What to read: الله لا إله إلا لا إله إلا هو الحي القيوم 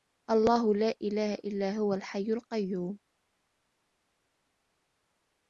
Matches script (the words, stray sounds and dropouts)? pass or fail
fail